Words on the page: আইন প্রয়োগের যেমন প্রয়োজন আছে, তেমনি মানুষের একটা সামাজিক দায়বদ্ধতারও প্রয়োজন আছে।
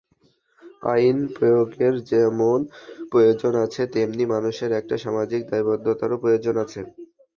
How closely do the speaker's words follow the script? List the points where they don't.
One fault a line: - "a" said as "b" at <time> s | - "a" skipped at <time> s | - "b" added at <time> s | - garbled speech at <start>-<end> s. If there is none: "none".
none